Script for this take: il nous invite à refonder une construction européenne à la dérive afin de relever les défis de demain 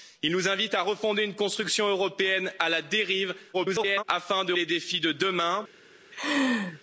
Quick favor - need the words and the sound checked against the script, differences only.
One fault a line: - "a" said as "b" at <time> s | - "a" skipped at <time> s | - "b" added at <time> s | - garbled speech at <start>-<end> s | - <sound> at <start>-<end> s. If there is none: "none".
- garbled speech at 3.5-4.0 s
- "relever" skipped at 4.5 s
- laugh at 6.1-6.8 s